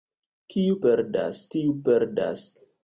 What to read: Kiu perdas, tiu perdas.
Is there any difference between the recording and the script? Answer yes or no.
no